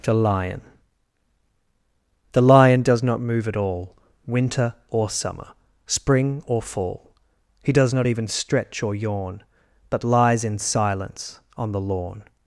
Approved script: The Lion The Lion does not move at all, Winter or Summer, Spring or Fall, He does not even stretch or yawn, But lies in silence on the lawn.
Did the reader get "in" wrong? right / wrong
right